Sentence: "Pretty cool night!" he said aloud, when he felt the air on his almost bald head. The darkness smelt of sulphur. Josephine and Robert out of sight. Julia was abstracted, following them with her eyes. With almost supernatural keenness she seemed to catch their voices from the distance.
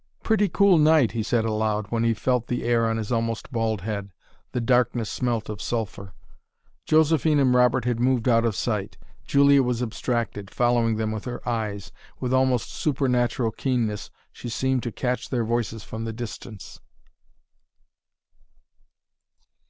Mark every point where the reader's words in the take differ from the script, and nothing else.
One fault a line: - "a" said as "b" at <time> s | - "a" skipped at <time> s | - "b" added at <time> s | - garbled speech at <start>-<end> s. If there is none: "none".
- "had moved" added at 7.9 s